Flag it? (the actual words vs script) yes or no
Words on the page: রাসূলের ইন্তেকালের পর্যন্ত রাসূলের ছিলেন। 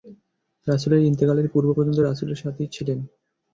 yes